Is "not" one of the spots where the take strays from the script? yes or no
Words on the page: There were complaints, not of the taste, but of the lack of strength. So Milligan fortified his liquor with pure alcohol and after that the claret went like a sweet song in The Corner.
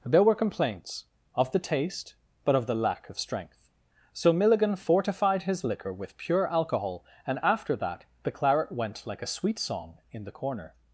yes